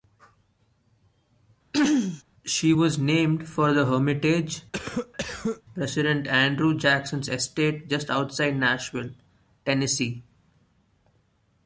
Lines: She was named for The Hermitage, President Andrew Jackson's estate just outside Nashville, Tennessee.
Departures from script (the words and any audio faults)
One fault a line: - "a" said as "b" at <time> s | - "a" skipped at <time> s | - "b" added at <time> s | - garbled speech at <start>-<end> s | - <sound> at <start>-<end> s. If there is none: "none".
- throat clearing at 1.7-2.2 s
- cough at 4.7-5.6 s